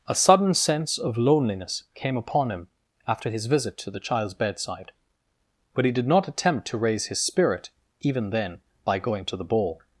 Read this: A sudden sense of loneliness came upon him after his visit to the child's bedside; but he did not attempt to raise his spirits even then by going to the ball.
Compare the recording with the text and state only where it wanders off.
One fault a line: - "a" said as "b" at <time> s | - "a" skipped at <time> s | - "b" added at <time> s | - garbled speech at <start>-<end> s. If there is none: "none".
- "spirits" said as "spirit" at 7.2 s